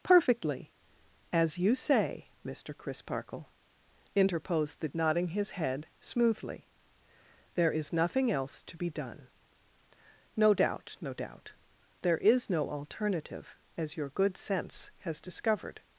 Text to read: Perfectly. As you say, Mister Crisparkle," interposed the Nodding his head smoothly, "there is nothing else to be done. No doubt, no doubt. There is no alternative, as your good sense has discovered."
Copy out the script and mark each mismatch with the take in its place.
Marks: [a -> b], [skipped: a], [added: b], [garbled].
Perfectly. As you say, Mister Crisparkle," interposed the Nodding his head smoothly, "there is nothing else to be done. No doubt, no doubt. There is no alternative, as your good sense has discovered."